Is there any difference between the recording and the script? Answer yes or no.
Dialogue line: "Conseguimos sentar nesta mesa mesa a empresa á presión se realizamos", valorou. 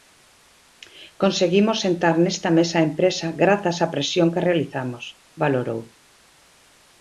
yes